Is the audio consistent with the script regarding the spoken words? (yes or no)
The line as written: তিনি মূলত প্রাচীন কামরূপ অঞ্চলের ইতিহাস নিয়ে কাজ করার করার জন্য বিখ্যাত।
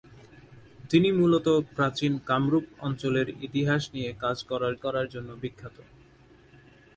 yes